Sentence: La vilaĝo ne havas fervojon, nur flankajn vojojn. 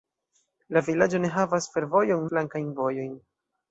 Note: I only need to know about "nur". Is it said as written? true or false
false